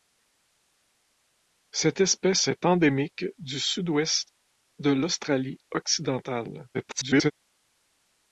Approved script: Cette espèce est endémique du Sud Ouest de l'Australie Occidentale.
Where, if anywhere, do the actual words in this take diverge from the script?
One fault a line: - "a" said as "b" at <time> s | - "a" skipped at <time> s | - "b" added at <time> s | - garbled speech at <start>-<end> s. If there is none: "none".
- garbled speech at 6.7-7.3 s